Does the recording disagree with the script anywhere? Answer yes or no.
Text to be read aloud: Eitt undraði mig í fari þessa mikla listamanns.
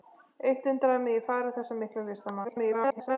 yes